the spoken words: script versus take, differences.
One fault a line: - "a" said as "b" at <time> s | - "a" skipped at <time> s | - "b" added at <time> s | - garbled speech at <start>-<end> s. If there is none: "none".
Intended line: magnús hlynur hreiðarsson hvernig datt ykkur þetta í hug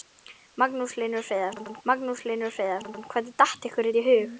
- "magnús hlynur hreiðarsson" added at 1.9 s